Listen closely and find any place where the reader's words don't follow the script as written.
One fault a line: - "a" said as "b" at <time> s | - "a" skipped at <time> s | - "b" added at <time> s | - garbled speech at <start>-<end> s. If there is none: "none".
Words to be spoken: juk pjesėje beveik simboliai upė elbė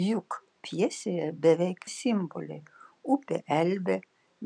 none